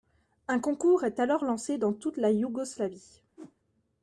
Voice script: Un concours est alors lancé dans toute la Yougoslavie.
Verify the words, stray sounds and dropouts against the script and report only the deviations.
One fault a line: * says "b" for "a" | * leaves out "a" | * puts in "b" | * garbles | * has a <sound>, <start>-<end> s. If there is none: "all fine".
* has a whoosh, 3.4-3.6 s